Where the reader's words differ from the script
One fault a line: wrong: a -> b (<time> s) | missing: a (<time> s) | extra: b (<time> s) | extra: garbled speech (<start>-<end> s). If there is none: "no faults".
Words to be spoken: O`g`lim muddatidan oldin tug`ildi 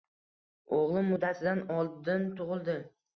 no faults